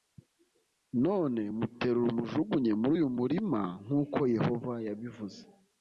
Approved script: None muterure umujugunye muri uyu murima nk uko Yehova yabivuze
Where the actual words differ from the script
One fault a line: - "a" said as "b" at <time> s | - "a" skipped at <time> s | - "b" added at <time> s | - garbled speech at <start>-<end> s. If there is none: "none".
none